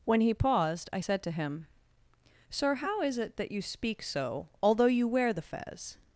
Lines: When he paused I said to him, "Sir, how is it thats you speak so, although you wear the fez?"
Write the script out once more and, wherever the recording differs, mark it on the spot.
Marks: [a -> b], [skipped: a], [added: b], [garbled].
When he paused I said to him, "Sir, how is it [thats -> that] you speak so, although you wear the fez?"